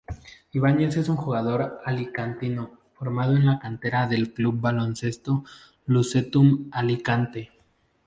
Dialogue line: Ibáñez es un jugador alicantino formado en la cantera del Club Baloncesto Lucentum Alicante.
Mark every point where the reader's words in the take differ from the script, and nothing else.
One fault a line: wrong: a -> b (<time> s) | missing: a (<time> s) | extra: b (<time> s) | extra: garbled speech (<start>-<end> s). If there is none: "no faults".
no faults